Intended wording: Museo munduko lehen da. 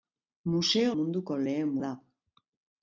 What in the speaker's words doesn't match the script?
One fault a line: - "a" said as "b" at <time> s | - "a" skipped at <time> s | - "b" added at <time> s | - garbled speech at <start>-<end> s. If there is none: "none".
none